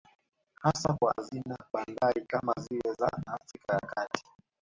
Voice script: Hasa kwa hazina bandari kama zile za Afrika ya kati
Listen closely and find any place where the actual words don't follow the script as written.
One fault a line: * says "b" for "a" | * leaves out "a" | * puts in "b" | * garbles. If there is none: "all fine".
all fine